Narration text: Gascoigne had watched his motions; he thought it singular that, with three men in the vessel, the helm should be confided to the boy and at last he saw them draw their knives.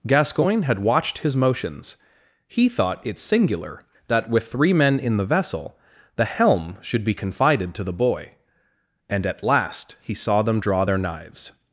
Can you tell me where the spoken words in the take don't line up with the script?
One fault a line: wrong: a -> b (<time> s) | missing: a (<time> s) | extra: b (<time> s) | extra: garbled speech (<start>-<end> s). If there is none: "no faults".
no faults